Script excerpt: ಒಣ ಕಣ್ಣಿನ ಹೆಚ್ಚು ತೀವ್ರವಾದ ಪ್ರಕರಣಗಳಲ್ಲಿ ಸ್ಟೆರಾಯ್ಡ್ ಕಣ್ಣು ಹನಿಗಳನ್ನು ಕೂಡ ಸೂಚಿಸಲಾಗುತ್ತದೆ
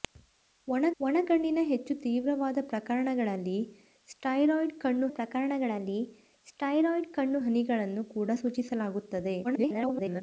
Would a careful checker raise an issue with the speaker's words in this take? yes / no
yes